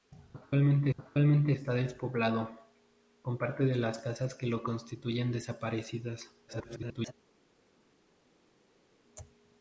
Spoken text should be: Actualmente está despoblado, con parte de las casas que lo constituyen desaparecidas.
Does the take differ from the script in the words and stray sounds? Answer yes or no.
yes